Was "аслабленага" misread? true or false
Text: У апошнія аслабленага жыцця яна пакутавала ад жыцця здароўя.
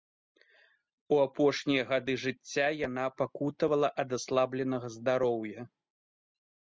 true